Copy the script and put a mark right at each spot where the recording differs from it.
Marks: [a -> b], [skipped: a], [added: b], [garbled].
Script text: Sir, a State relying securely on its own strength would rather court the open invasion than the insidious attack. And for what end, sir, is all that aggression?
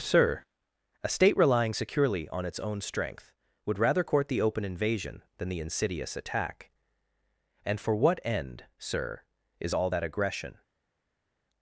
Sir, a State relying securely on its own strength would rather court the open invasion than the insidious attack. And for what end, sir, is all that aggression?